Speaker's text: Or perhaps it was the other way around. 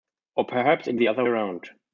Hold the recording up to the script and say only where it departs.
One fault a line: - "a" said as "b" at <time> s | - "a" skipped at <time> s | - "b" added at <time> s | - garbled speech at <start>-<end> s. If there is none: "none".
- "was" skipped at 0.9 s
- "way" skipped at 1.3 s